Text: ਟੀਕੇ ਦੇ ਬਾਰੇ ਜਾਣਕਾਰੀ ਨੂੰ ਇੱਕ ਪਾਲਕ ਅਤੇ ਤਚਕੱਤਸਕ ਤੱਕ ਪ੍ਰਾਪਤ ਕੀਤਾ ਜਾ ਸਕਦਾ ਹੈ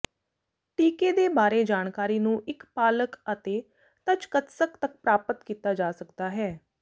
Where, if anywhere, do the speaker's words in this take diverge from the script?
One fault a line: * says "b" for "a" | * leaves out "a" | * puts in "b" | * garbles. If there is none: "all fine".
all fine